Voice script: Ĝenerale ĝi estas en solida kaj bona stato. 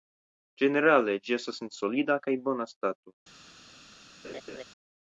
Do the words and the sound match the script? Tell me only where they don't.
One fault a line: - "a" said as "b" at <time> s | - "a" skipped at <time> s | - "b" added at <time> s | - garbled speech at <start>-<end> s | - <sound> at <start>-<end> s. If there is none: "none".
- laugh at 4.2-4.6 s